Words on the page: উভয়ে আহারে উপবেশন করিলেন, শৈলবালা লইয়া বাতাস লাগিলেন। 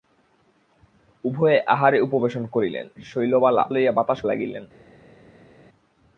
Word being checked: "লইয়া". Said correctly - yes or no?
yes